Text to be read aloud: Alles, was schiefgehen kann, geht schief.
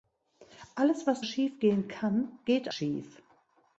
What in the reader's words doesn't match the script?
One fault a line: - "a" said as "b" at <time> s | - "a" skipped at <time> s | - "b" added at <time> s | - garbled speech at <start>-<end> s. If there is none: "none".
none